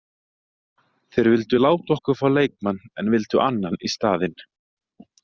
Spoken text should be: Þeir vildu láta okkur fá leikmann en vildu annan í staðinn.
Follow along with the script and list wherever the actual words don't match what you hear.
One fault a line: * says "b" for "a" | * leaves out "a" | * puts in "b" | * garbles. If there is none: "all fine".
all fine